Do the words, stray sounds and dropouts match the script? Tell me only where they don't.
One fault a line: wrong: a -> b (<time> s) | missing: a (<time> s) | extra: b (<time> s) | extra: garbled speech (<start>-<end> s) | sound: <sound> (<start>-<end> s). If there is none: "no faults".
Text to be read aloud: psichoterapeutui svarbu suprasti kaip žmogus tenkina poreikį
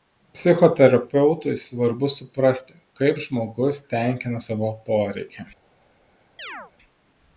extra: savo (4.5 s)
sound: chirp (6.4-6.7 s)